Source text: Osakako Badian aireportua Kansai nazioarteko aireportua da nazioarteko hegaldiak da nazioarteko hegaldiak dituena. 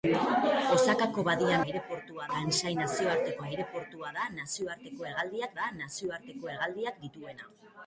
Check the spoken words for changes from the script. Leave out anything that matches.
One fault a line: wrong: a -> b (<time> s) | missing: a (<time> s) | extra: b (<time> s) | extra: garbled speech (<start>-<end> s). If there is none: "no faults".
no faults